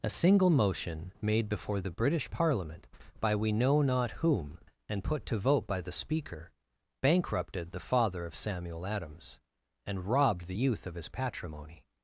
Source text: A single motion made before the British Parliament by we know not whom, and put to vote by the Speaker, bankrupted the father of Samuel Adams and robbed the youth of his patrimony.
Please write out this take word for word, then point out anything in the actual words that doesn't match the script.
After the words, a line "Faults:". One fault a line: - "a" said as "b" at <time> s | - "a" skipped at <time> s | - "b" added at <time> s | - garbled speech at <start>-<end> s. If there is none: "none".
A single motion made before the British Parliament by we know not whom, and put to vote by the Speaker, bankrupted the father of Samuel Adams and robbed the youth of his patrimony.
Faults:
none